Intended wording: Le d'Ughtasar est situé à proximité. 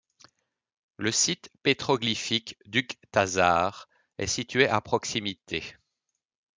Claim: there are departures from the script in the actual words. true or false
true